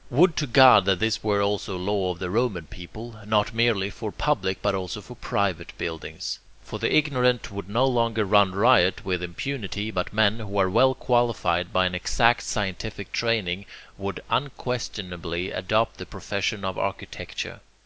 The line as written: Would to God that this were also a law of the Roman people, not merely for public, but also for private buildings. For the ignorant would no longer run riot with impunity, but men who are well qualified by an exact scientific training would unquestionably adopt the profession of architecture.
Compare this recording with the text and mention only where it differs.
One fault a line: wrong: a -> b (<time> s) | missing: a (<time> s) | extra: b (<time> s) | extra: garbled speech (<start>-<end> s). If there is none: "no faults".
no faults